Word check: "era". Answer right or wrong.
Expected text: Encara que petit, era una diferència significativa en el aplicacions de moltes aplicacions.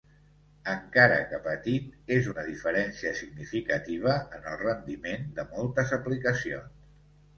wrong